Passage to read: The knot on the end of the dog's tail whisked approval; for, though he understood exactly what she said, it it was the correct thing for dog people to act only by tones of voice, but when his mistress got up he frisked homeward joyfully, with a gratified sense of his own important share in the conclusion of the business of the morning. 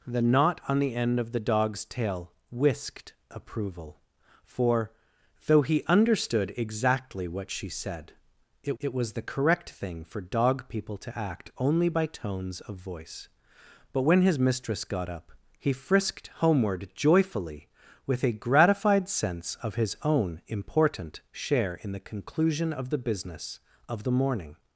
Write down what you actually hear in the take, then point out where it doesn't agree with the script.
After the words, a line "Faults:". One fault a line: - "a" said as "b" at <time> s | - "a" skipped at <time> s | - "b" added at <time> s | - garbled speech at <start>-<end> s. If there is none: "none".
The knot on the end of the dog's tail whisked approval; for, though he understood exactly what she said, it it was the correct thing for dog people to act only by tones of voice, but when his mistress got up he frisked homeward joyfully, with a gratified sense of his own important share in the conclusion of the business of the morning.
Faults:
none